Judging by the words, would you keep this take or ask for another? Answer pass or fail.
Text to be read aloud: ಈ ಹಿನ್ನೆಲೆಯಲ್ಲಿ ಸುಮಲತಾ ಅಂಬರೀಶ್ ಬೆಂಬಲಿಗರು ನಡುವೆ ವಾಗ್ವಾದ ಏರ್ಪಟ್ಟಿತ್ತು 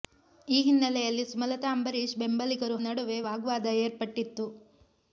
pass